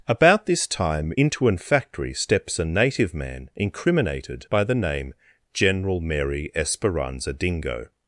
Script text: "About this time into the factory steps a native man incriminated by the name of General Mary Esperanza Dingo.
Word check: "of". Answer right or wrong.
wrong